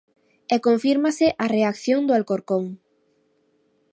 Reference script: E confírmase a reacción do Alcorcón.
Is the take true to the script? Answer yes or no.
yes